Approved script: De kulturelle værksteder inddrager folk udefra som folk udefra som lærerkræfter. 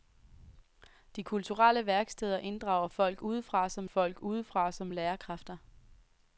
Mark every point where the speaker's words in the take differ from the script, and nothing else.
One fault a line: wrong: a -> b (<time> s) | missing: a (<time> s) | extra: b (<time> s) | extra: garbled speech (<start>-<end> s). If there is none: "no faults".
no faults